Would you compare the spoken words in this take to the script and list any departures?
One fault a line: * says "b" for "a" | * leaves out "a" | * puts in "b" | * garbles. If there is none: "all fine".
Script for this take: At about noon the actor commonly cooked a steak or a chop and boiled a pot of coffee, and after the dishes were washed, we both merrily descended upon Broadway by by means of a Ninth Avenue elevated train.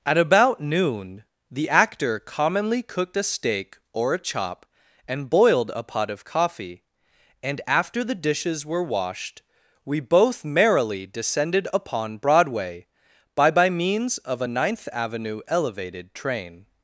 all fine